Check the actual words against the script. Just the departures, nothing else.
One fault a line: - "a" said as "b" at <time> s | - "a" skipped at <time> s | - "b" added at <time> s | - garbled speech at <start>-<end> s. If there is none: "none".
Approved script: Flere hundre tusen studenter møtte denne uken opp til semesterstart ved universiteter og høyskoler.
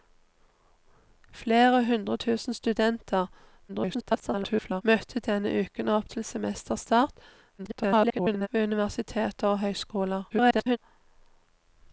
- garbled speech at 3.7-4.8 s
- garbled speech at 7.6-8.5 s
- garbled speech at 10.3-10.8 s